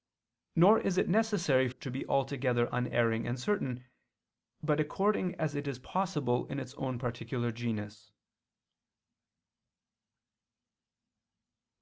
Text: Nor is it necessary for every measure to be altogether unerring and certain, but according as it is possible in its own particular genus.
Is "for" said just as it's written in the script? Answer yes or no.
no